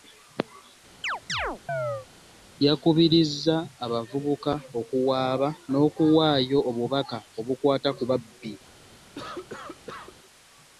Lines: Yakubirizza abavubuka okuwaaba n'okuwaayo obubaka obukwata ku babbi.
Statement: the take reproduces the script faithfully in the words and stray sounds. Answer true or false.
false